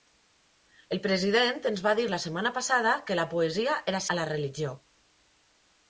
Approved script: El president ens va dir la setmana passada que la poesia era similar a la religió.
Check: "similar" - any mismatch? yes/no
yes